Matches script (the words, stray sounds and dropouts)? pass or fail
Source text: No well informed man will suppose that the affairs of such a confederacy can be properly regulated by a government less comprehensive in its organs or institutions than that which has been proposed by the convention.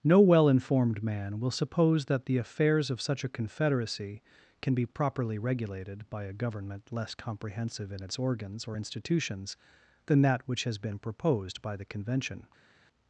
pass